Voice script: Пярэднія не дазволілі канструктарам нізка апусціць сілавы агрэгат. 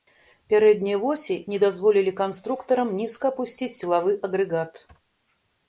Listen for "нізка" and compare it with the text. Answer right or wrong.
right